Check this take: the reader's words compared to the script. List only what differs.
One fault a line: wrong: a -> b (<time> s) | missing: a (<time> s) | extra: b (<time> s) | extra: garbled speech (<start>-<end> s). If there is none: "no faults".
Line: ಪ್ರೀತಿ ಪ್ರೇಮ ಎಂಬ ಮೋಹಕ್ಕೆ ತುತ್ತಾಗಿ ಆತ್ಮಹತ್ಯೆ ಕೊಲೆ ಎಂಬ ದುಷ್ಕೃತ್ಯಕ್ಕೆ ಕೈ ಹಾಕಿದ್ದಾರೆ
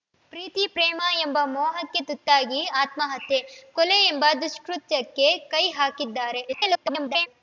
extra: garbled speech (6.5-7.3 s)